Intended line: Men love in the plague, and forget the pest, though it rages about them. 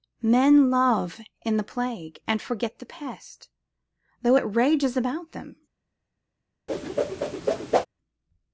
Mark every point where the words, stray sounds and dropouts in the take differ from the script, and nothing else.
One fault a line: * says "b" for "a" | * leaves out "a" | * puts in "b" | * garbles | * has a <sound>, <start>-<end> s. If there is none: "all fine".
* has a whoosh, 6.7-7.9 s